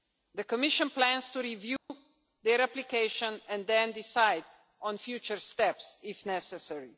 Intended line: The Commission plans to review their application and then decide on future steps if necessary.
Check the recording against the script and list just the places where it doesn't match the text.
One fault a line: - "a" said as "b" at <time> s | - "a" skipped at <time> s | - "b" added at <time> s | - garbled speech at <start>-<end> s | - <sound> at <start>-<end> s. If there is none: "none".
- dropout at 1.8-1.9 s